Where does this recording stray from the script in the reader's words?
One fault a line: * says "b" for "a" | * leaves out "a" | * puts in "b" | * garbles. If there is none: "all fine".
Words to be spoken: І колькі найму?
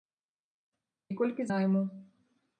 all fine